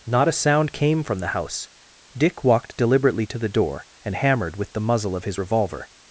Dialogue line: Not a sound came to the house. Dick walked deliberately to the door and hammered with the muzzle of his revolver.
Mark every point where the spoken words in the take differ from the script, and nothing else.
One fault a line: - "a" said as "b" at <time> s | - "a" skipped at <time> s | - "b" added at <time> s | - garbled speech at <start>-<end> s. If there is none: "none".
- "to" said as "from" at 1.0 s